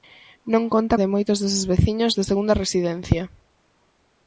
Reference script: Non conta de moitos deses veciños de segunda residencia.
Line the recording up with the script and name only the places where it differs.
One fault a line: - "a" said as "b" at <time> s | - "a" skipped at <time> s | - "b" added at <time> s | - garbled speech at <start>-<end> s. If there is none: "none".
none